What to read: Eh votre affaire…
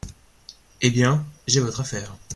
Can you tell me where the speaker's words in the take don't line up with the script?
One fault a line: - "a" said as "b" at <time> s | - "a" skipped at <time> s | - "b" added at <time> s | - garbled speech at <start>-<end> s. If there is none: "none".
- "bien j'ai" added at 0.9 s